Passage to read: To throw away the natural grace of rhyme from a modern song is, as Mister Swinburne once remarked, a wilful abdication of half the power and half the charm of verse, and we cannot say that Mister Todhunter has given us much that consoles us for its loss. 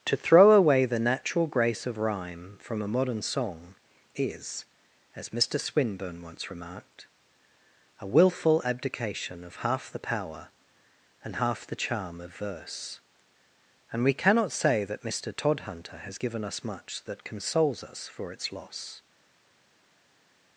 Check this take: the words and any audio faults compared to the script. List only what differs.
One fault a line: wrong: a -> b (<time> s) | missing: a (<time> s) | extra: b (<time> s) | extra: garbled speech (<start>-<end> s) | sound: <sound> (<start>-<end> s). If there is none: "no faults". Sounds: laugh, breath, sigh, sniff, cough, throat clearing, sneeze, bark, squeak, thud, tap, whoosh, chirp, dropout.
no faults